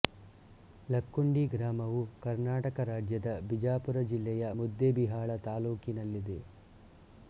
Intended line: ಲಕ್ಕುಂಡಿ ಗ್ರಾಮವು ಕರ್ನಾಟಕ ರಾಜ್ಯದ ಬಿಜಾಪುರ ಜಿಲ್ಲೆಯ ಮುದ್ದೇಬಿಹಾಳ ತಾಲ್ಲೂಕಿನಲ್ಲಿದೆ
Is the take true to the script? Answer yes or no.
yes